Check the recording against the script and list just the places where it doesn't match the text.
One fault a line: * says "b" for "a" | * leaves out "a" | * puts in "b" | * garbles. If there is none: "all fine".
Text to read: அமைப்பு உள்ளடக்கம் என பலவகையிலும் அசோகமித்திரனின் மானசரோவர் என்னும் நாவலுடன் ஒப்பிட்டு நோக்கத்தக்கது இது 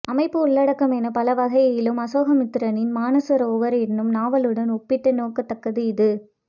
all fine